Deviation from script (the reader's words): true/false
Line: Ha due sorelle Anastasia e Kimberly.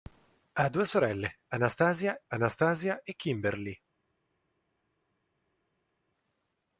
true